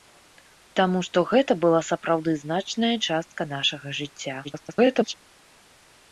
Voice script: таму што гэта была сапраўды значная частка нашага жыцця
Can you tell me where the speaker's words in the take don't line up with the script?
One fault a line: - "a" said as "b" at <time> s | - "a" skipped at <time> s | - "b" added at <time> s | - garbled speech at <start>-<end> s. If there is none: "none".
- garbled speech at 4.4-5.1 s